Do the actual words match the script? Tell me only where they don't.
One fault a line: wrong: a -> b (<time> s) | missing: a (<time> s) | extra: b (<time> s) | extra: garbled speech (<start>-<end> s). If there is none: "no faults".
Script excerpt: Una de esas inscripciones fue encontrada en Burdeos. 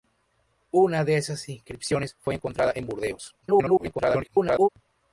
extra: garbled speech (3.4-4.7 s)